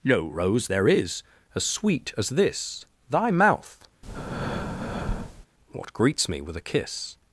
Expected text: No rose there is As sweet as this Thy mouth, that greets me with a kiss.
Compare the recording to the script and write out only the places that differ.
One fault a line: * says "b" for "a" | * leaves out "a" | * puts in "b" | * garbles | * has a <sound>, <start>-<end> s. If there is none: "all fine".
* has a breath, 4.0-5.5 s
* says "what" for "that"